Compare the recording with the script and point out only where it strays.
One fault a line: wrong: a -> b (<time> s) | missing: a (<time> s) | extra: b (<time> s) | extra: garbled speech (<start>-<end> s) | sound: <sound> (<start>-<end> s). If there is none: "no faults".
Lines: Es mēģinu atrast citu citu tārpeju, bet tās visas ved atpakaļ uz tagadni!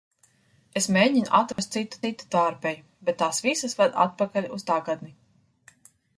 sound: dropout (1.5-1.6 s)